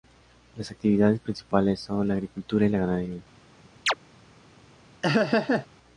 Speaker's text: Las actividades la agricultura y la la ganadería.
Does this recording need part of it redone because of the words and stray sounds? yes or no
yes